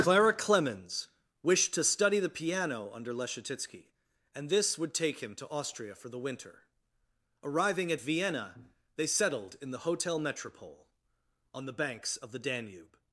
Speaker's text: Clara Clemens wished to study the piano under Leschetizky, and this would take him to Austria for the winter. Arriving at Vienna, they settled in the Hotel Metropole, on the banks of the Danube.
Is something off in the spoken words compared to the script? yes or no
no